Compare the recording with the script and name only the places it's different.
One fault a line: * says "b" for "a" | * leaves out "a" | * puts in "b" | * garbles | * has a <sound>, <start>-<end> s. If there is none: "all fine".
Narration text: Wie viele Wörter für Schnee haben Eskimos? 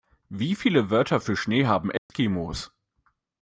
* has a dropout, 2.0-2.1 s